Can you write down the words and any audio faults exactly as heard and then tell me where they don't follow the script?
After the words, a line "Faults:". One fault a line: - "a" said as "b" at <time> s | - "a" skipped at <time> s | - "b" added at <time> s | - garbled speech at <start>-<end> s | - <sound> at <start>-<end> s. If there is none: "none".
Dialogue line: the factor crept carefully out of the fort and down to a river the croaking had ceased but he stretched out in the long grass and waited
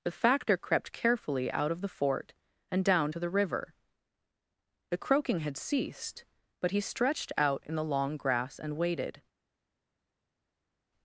the factor crept carefully out of the fort and down to the river the croaking had ceased but he stretched out in the long grass and waited
Faults:
- "a" said as "the" at 3.2 s